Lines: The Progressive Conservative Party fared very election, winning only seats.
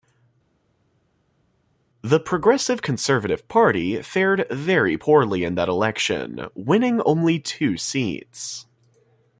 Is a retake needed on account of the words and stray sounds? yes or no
yes